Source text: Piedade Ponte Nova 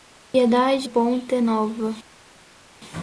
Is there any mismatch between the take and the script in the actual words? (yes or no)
no